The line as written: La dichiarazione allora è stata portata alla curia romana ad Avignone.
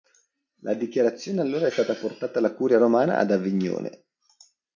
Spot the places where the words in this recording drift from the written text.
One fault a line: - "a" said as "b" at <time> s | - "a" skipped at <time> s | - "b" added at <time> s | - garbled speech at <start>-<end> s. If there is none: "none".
none